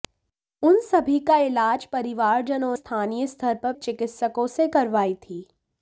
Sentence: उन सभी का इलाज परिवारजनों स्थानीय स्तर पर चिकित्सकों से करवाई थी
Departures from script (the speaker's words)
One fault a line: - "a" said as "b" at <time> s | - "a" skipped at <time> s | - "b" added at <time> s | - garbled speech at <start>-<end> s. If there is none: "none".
none